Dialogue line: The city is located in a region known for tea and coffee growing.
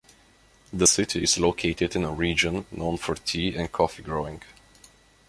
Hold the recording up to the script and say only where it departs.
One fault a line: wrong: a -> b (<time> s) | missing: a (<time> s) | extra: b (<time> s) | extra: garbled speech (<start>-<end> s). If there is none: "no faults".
no faults